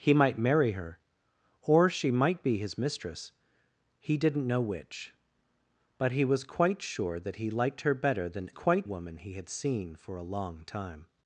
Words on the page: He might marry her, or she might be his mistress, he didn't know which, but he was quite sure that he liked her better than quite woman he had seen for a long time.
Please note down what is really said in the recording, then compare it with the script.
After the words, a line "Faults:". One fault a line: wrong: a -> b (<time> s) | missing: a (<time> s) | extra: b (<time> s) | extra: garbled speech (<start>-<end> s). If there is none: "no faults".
He might marry her, or she might be his mistress, he didn't know which, but he was quite sure that he liked her better than quite woman he had seen for a long time.
Faults:
no faults